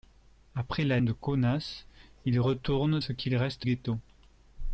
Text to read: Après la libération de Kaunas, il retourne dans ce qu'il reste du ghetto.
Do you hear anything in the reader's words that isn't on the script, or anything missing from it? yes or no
yes